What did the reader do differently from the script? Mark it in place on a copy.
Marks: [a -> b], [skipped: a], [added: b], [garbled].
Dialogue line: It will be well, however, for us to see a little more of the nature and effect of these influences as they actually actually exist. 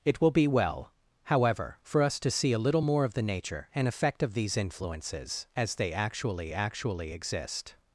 It will be well, however, for us to see a little more of the nature and effect of these influences as they actually actually exist.